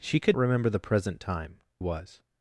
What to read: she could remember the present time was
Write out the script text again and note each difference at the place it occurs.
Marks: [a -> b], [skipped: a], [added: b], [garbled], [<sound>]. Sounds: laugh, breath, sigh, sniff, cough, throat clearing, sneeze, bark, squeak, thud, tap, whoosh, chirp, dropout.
she could remember the present time was